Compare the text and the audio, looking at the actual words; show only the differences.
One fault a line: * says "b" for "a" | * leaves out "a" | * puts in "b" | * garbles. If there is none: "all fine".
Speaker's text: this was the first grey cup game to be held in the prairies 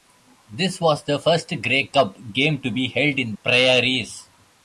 * leaves out "the"